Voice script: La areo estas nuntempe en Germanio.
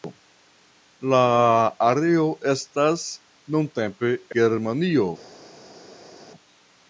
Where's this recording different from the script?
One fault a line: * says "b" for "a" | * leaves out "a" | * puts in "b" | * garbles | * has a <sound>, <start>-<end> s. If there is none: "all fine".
* leaves out "en"